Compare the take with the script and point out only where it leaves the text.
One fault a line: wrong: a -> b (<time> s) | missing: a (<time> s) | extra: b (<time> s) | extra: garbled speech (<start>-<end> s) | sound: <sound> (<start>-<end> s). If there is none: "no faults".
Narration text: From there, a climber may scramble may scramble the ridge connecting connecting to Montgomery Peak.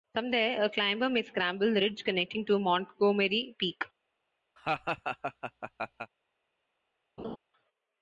missing: may scramble (1.7 s)
missing: connecting (2.5 s)
sound: laugh (4.6-6.1 s)
sound: laugh (7.2-7.4 s)